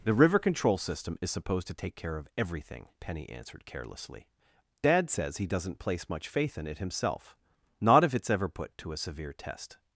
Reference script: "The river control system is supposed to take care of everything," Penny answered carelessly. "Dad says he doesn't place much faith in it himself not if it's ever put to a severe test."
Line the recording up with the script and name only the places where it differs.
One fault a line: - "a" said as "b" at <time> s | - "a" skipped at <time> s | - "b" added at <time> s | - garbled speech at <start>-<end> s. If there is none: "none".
none